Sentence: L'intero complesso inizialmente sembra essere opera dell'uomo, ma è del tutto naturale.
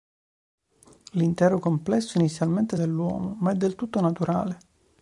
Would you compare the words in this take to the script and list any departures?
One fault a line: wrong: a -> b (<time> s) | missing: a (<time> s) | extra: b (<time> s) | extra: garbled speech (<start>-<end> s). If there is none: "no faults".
missing: sembra essere opera (2.8 s)